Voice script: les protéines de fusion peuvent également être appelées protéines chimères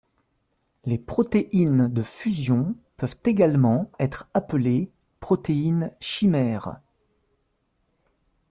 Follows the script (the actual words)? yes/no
yes